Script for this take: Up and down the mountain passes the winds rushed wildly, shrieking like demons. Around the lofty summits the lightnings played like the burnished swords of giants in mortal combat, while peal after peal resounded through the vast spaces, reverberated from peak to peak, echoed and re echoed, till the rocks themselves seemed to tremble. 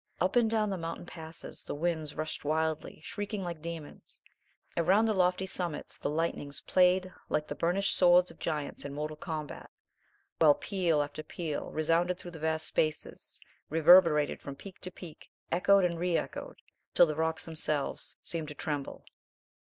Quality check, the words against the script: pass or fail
pass